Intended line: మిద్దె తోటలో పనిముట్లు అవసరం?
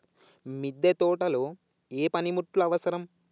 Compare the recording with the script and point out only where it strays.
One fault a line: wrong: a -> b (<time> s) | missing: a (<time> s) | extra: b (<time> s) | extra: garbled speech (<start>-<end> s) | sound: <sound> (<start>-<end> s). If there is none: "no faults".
extra: ఏ (1.9 s)